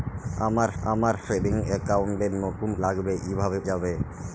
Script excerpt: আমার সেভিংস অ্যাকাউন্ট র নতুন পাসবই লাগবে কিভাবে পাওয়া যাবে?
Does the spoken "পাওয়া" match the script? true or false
false